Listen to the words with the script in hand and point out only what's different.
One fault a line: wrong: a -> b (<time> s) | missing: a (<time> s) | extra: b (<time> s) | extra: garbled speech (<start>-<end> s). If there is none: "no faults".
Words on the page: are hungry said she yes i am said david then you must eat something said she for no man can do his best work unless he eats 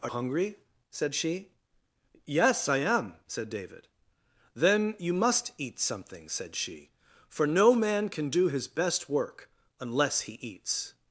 no faults